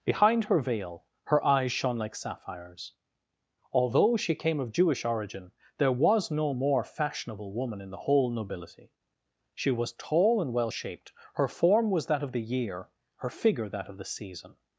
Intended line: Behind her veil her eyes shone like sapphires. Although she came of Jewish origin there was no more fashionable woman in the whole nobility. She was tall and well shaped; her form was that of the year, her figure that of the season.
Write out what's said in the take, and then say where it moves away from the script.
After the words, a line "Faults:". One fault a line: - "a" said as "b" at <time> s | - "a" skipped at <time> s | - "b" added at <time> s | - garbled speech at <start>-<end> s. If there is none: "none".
Behind her veil her eyes shone like sapphires. Although she came of Jewish origin there was no more fashionable woman in the whole nobility. She was tall and well shaped; her form was that of the year, her figure that of the season.
Faults:
none